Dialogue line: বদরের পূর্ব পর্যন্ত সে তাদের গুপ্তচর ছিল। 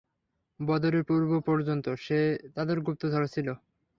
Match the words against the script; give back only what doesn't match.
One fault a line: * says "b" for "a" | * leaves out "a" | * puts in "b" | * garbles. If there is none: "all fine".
all fine